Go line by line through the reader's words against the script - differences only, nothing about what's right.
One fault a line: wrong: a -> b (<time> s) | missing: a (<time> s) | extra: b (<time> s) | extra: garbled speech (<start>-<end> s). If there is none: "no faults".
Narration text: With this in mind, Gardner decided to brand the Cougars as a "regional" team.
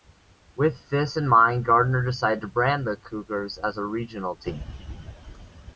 no faults